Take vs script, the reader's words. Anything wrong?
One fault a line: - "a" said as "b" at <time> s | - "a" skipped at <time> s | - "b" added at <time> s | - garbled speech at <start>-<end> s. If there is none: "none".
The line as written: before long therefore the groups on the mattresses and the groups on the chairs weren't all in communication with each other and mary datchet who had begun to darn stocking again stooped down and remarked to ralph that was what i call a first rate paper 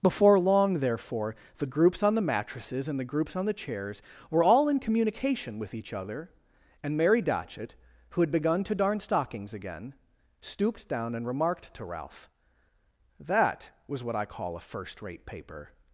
- "weren't" said as "were" at 4.3 s
- "stocking" said as "stockings" at 9.0 s